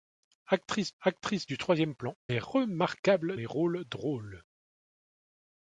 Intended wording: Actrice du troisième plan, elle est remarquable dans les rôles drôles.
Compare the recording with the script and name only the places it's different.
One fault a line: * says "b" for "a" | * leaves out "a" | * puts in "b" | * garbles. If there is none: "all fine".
* puts in "actrice"
* leaves out "elle"
* leaves out "dans"